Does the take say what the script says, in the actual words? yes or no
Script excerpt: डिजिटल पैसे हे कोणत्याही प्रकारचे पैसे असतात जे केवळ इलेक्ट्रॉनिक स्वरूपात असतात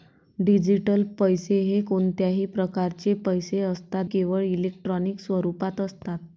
no